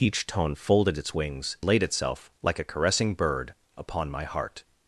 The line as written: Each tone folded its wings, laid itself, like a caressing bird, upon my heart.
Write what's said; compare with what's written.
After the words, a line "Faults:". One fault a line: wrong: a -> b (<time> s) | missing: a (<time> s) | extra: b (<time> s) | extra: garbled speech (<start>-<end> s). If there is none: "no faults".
Each tone folded its wings, laid itself, like a caressing bird, upon my heart.
Faults:
no faults